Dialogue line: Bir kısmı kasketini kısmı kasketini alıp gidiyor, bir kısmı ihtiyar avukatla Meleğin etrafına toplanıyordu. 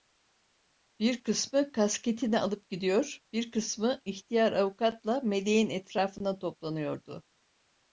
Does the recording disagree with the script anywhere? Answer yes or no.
yes